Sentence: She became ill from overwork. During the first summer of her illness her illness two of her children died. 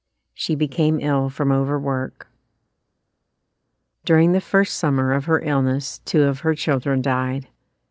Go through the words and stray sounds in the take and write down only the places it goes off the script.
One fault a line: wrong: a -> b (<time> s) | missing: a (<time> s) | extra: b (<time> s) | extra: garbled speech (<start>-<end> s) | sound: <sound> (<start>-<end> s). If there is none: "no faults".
missing: her illness (6.0 s)